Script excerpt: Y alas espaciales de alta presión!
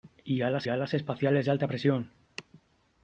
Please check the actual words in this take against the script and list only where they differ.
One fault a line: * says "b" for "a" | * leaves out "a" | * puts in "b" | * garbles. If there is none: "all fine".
* puts in "alas"